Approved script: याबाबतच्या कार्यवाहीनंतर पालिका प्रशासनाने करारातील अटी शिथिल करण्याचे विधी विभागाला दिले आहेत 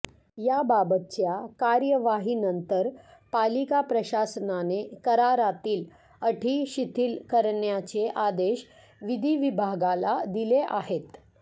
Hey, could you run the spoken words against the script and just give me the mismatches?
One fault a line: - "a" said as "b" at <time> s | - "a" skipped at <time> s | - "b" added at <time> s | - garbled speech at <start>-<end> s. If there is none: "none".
- "आदेश" added at 8.2 s